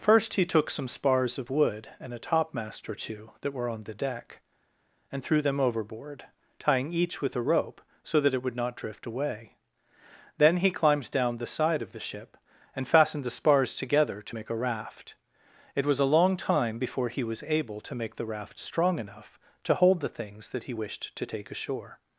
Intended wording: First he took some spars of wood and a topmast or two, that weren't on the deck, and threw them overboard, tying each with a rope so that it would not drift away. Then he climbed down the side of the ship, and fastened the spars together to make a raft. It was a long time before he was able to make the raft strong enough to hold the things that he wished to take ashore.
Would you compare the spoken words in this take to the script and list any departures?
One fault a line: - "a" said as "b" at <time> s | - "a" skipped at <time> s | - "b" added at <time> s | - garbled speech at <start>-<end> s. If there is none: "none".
- "weren't" said as "were" at 3.5 s